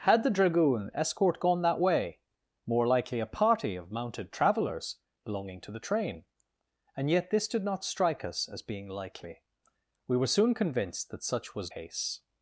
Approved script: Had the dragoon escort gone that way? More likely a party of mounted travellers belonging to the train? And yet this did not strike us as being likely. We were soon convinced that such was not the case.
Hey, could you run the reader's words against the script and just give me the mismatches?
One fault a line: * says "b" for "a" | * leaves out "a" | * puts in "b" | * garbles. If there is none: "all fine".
* leaves out "not the"